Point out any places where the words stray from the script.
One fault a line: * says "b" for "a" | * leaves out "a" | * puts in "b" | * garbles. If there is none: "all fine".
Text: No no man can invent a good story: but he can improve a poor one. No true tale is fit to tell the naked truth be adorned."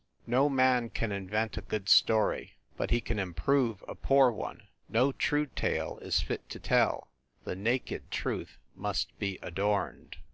* leaves out "no"
* puts in "must"